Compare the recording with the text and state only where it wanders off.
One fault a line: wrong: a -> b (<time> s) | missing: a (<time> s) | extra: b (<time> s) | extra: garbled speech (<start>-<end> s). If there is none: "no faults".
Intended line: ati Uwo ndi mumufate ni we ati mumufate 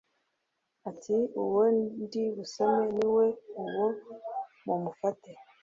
wrong: mumufate -> busome (2.3 s)
wrong: ati -> uwo (3.6 s)